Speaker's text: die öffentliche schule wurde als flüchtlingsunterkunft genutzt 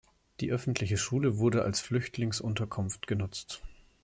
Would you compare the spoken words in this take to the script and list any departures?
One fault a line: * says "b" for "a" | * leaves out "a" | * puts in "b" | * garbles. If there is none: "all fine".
all fine